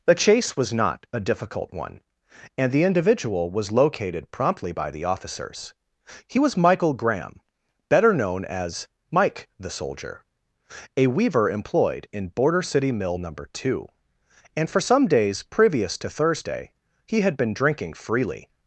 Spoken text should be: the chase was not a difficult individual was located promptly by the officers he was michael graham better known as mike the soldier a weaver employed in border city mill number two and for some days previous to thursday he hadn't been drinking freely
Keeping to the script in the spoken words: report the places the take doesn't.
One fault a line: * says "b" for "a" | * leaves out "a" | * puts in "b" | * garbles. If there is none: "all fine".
* puts in "one and the"
* says "had" for "hadn't"